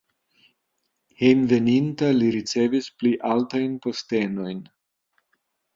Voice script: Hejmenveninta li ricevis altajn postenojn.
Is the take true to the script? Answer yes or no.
no